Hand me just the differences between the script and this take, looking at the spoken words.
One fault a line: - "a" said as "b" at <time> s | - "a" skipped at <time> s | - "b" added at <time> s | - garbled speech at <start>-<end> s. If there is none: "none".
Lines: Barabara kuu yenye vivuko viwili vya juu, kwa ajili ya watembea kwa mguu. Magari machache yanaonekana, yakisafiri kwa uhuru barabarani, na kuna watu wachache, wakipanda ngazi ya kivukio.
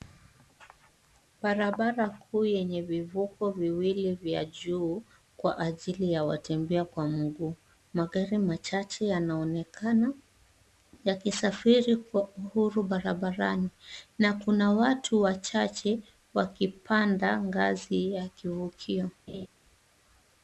none